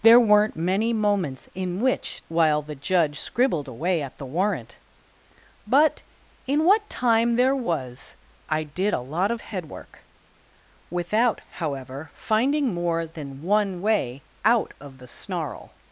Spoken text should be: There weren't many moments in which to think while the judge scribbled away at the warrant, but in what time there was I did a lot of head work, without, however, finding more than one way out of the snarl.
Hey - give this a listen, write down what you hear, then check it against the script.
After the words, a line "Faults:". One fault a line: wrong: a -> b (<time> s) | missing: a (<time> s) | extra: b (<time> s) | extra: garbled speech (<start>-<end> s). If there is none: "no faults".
There weren't many moments in which while the judge scribbled away at the warrant, but in what time there was I did a lot of head work, without, however, finding more than one way out of the snarl.
Faults:
missing: to think (2.2 s)